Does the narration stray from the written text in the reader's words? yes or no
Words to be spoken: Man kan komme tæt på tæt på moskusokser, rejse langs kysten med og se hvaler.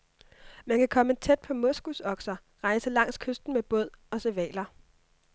yes